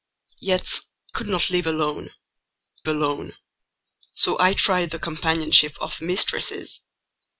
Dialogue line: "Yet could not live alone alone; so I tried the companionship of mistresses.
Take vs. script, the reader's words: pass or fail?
pass